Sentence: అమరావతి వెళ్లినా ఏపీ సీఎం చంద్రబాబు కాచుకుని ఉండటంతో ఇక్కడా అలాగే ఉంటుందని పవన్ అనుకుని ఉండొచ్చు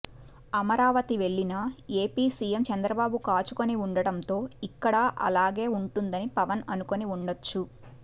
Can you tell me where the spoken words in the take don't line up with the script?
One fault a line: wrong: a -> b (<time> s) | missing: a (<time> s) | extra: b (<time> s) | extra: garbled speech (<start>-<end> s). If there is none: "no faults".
no faults